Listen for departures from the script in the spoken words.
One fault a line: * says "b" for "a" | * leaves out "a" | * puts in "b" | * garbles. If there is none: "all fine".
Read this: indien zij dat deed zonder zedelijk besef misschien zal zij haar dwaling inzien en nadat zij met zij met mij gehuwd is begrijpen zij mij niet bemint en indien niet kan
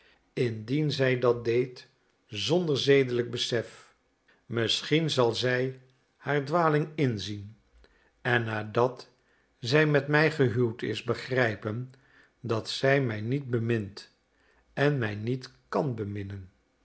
* leaves out "zij met"
* puts in "dat"
* says "mij" for "indien"